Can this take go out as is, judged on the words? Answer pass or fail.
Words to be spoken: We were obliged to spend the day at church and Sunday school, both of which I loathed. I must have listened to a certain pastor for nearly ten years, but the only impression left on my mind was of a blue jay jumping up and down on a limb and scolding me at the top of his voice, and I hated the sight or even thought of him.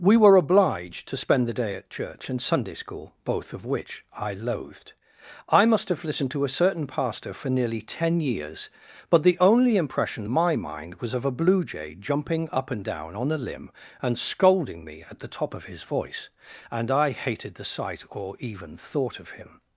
fail